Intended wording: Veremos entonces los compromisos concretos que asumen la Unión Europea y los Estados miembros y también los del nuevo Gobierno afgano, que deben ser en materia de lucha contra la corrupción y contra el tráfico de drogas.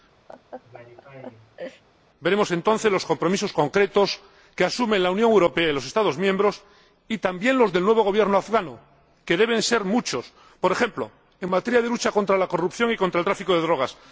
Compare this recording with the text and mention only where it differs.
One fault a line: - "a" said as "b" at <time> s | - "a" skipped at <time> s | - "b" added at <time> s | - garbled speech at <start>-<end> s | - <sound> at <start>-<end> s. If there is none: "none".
- laugh at 0.3-1.8 s
- "muchos por ejemplo" added at 9.8 s